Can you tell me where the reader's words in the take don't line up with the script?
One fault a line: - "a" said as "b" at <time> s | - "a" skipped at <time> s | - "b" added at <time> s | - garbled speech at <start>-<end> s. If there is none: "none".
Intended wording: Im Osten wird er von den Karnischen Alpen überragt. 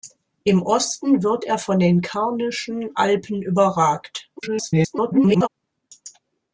- garbled speech at 4.4-5.5 s